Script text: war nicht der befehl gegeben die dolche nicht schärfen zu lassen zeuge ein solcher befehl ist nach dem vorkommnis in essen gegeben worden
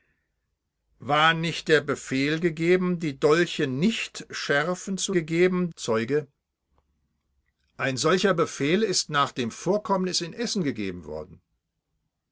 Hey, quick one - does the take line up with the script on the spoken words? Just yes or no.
no